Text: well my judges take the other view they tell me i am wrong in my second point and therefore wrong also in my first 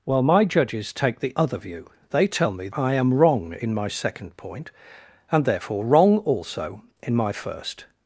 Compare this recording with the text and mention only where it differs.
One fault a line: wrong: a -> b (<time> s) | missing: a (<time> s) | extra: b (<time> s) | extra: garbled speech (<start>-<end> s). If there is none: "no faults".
no faults